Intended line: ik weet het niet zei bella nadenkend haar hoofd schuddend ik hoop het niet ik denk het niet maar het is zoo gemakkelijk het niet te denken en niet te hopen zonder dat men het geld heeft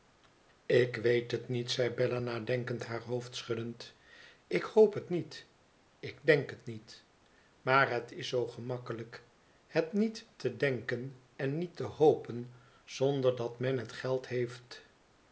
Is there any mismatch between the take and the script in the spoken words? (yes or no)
no